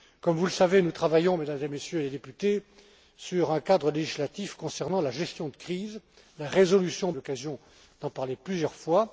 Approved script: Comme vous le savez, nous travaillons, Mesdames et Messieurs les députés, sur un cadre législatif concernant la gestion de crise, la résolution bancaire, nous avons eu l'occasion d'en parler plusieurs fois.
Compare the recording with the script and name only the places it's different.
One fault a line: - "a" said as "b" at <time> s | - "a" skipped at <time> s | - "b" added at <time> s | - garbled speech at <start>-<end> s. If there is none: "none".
- "bancaire nous avons" skipped at 7.1 s